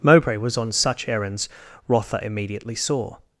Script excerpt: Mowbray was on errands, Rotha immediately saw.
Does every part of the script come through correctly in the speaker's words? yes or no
no